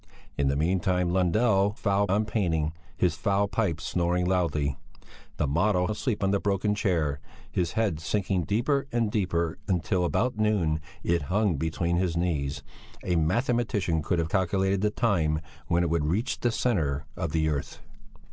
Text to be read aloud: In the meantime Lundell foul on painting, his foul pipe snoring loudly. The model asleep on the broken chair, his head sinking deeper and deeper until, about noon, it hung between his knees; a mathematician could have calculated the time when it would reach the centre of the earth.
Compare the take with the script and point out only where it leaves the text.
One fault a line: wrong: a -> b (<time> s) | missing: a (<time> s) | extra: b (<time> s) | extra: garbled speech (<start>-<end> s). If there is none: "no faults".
no faults